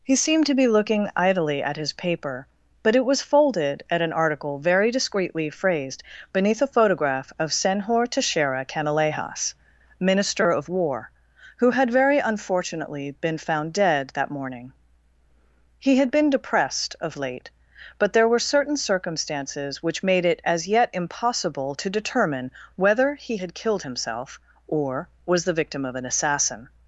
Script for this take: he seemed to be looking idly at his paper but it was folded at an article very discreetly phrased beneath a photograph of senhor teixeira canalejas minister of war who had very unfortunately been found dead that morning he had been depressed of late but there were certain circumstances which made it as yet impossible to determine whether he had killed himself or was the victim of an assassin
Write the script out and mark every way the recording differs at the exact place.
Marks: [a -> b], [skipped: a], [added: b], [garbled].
he seemed to be looking idly at his paper but it was folded at an article very discreetly phrased beneath a photograph of senhor teixeira canalejas minister of war who had very unfortunately been found dead that morning he had been depressed of late but there were certain circumstances which made it as yet impossible to determine whether he had killed himself or was the victim of an assassin